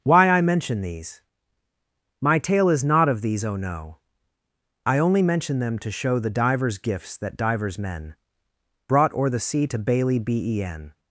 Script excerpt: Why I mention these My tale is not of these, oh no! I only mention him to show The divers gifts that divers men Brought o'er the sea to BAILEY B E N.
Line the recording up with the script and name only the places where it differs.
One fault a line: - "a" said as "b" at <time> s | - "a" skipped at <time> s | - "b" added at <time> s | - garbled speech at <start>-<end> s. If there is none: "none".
- "him" said as "them" at 5.6 s